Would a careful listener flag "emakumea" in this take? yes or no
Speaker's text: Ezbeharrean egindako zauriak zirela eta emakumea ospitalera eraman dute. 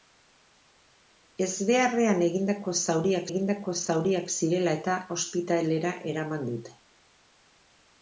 yes